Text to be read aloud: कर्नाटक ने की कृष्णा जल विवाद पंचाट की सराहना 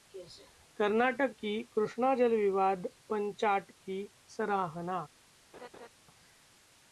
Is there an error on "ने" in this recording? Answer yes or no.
yes